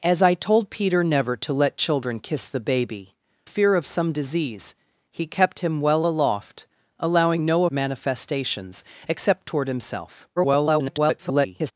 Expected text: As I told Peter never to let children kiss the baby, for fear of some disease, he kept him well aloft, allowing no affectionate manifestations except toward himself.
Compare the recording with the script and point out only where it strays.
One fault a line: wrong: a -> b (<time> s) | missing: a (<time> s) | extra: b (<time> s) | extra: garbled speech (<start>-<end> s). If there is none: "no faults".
missing: for (3.1 s)
missing: affectionate (7.7 s)
extra: garbled speech (10.4-11.7 s)